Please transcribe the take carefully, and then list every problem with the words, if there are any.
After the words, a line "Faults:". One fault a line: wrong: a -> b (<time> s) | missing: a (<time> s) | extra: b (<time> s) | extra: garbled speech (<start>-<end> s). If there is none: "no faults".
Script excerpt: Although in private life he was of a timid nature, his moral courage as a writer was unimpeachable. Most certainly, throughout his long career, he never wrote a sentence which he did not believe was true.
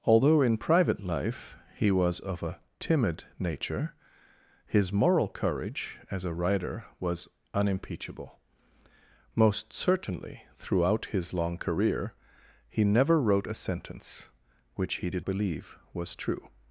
Although in private life he was of a timid nature, his moral courage as a writer was unimpeachable. Most certainly, throughout his long career, he never wrote a sentence which he did believe was true.
Faults:
missing: not (15.3 s)